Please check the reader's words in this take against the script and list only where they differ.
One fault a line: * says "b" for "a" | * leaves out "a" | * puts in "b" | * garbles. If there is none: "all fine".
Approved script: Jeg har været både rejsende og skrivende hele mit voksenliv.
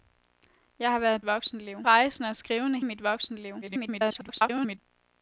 * says "voksenliv" for "både"
* leaves out "hele"
* garbles